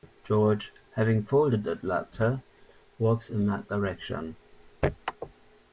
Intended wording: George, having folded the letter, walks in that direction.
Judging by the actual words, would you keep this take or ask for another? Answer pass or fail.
pass